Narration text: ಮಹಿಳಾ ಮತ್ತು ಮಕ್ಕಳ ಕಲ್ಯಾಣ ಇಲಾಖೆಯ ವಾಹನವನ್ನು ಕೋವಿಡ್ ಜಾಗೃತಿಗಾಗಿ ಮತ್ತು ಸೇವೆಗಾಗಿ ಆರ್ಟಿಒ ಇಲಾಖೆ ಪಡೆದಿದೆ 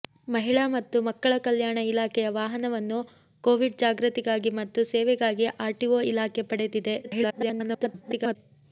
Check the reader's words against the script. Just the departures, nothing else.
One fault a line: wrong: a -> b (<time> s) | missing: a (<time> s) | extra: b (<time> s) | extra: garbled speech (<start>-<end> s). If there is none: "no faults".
extra: garbled speech (7.0-8.4 s)